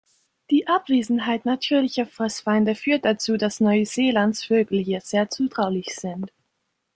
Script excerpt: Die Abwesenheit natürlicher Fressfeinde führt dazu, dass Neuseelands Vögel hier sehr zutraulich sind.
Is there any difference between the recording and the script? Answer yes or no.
no